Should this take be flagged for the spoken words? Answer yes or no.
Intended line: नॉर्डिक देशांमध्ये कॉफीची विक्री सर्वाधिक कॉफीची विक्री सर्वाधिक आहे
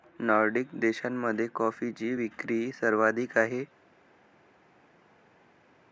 yes